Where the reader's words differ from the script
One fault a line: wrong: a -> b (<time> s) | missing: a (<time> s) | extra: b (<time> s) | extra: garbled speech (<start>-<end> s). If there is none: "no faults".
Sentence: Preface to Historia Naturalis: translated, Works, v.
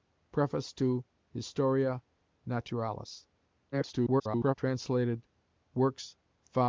extra: garbled speech (3.7-4.6 s)